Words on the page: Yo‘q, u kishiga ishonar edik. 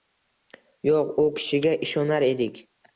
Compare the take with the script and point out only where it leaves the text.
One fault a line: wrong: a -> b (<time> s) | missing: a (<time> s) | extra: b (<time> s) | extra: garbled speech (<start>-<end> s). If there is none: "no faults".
no faults